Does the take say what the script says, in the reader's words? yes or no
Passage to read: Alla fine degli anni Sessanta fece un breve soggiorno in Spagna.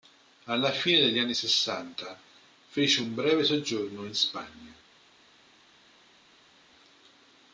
yes